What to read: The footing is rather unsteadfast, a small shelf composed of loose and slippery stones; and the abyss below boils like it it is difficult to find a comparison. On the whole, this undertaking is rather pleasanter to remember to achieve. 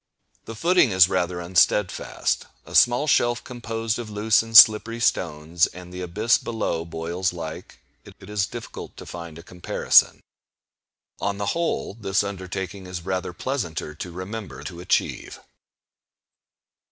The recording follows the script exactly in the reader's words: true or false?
true